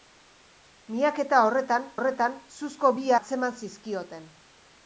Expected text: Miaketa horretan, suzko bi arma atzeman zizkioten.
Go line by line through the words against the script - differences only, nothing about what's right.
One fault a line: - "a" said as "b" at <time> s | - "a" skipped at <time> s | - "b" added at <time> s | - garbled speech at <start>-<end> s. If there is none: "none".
- "horretan" added at 2.0 s
- "arma" skipped at 3.1 s